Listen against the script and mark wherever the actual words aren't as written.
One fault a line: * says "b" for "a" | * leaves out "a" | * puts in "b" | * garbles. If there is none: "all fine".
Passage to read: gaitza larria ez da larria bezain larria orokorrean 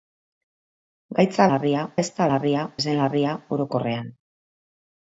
all fine